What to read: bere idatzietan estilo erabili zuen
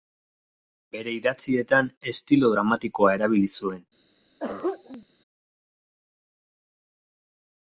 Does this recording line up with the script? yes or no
no